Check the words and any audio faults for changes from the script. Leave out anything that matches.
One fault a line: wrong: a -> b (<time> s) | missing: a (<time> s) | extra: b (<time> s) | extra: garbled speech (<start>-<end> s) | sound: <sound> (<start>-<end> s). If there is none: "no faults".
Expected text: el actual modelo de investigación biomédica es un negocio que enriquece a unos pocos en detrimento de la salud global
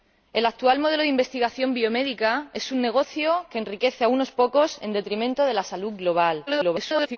extra: garbled speech (6.5-7.2 s)